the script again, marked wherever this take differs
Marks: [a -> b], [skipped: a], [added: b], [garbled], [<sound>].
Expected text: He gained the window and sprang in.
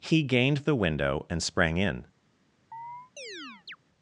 He gained the window and sprang in. [chirp]